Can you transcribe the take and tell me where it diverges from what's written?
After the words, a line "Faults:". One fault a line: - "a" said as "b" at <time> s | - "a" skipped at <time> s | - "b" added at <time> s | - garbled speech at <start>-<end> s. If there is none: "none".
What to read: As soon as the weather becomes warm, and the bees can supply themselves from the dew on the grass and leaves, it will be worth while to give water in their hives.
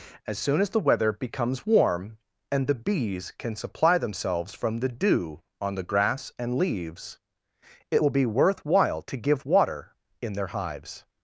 As soon as the weather becomes warm, and the bees can supply themselves from the dew on the grass and leaves, it will be worth while to give water in their hives.
Faults:
none